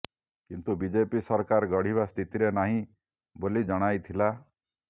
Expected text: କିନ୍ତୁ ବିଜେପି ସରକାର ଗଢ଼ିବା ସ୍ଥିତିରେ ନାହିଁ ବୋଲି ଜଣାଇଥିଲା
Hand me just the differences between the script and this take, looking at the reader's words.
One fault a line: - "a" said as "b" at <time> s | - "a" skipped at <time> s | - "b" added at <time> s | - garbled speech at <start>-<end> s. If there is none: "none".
none